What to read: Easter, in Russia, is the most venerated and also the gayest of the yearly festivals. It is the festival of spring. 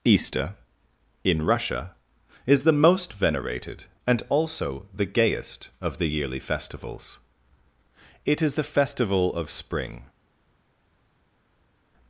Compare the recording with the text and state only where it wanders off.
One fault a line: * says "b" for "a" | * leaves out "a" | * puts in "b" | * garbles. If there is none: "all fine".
all fine